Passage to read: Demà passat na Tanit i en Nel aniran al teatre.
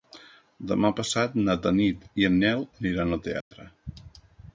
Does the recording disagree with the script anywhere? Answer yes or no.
no